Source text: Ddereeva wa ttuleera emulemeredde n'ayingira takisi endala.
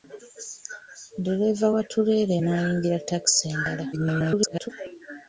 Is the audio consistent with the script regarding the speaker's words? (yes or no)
no